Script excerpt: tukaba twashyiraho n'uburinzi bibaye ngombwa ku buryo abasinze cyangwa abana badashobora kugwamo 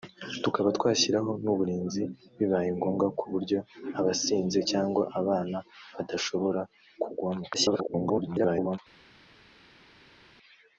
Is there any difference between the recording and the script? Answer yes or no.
yes